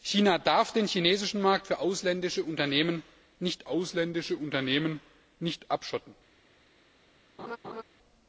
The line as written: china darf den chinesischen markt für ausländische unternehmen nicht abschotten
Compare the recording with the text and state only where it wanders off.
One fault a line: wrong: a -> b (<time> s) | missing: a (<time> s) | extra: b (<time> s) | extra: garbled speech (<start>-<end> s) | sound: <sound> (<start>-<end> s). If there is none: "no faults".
extra: ausländische unternehmen nicht (3.7 s)
sound: laugh (7.4-7.8 s)